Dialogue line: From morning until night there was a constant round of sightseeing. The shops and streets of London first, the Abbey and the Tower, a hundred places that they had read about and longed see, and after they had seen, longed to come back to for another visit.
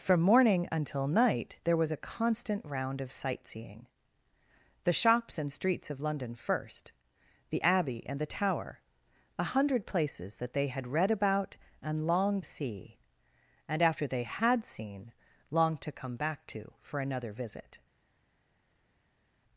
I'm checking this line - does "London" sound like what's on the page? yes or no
yes